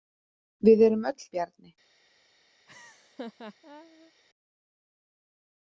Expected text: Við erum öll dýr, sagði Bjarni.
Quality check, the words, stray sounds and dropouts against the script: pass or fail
fail